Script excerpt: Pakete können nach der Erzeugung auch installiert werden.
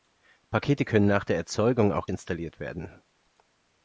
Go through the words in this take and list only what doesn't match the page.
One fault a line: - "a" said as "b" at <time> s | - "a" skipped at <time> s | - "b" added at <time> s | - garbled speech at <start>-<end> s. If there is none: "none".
none